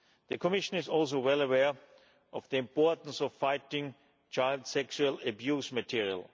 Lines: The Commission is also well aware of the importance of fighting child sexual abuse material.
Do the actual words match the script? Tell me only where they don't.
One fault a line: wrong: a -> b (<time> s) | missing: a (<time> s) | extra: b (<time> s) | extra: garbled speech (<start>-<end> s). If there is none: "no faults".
no faults